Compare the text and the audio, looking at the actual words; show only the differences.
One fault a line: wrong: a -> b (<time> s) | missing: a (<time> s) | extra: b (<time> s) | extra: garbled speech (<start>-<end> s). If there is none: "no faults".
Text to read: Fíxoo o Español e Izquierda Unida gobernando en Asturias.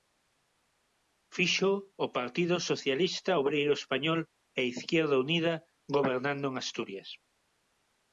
extra: Partido Socialista Obreiro (2.2 s)